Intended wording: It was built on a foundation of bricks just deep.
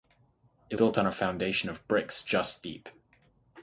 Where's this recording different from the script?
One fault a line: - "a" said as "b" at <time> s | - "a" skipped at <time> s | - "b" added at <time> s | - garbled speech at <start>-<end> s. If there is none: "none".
- "was" skipped at 0.8 s